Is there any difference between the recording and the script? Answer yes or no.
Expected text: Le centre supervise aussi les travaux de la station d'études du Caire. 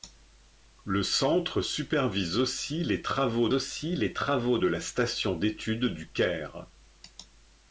yes